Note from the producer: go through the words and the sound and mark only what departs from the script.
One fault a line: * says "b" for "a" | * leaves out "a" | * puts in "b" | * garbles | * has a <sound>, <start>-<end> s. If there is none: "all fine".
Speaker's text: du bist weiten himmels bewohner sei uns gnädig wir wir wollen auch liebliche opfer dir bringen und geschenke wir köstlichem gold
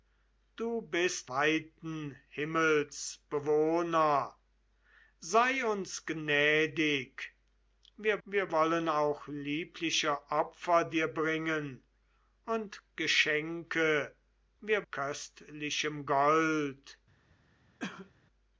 * has a cough, 17.8-18.1 s